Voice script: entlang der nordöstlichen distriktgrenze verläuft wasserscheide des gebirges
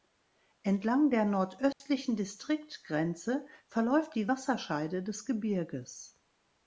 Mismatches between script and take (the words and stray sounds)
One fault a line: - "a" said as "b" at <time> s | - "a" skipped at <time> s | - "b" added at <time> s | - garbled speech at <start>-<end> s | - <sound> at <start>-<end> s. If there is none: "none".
- dropout at 1.7-1.8 s
- "die" added at 4.2 s